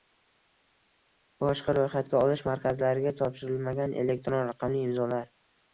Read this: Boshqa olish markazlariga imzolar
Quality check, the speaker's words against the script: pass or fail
fail